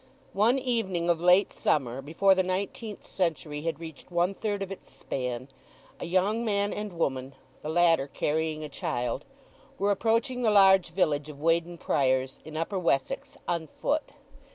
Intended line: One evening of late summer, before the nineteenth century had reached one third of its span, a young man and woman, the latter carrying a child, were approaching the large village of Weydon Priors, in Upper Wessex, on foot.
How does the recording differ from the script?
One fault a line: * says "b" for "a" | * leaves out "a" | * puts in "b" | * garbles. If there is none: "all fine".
all fine